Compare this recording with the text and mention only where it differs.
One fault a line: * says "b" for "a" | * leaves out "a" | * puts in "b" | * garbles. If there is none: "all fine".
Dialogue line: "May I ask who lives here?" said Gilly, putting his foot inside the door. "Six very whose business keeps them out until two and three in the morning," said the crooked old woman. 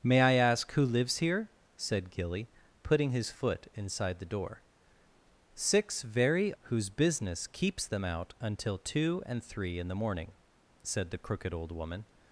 all fine